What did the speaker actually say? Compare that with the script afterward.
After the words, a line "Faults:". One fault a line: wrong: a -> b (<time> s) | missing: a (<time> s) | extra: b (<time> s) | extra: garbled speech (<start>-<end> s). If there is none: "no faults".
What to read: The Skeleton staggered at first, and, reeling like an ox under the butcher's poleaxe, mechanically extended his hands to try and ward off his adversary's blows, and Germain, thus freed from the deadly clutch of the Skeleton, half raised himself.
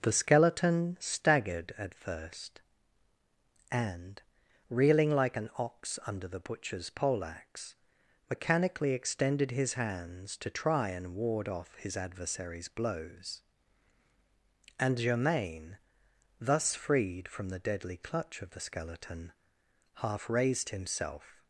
The Skeleton staggered at first, and, reeling like an ox under the butcher's poleaxe, mechanically extended his hands to try and ward off his adversary's blows, and Germain, thus freed from the deadly clutch of the Skeleton, half raised himself.
Faults:
no faults